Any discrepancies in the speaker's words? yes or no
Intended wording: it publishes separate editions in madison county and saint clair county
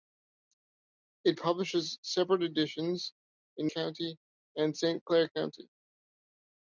yes